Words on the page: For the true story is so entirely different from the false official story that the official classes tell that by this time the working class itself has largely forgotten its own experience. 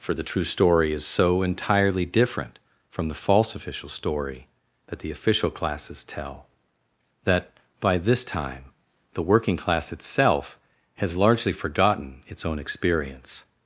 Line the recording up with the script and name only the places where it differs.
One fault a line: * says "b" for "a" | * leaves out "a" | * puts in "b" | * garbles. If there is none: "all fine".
all fine